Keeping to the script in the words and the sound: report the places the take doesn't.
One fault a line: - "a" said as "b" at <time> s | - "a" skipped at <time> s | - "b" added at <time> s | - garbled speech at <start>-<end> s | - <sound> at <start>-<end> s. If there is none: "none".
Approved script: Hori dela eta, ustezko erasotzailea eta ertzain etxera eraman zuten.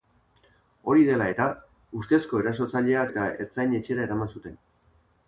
none